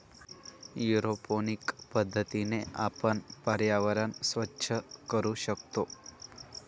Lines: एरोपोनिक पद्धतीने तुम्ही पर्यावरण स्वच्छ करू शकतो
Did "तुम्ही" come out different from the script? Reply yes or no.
yes